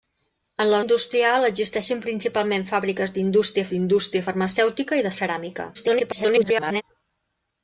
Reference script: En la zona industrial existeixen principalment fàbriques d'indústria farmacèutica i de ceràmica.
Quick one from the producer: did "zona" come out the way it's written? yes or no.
no